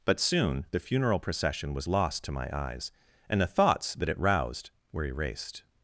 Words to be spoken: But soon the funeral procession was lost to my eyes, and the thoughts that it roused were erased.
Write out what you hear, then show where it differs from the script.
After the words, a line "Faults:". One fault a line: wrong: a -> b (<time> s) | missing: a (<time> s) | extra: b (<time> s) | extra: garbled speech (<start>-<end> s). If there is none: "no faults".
But soon the funeral procession was lost to my eyes, and the thoughts that it roused were erased.
Faults:
no faults